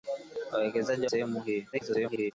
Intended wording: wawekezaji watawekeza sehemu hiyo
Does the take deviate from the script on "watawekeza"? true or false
true